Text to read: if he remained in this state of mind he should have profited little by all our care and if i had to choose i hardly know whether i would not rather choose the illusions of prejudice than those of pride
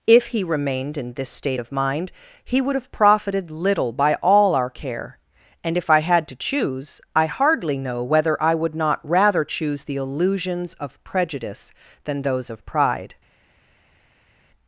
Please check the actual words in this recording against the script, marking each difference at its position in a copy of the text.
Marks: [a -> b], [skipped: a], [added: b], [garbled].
if he remained in this state of mind he [should -> would] have profited little by all our care and if i had to choose i hardly know whether i would not rather choose the illusions of prejudice than those of pride